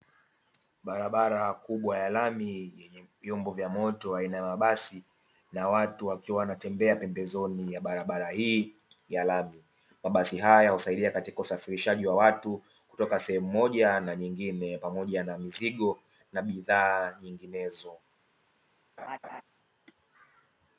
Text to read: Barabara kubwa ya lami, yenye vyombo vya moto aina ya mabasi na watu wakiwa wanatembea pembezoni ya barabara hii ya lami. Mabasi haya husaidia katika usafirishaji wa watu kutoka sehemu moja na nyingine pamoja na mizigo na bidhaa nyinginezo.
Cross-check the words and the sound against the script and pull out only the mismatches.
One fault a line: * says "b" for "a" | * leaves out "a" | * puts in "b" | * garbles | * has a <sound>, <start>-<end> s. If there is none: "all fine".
* has a laugh, 19.0-19.4 s